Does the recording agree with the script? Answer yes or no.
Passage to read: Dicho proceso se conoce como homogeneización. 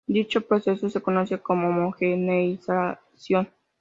yes